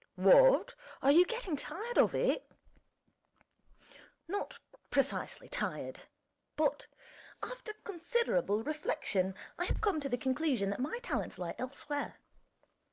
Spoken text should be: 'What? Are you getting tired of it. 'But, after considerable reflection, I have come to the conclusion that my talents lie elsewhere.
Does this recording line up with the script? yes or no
no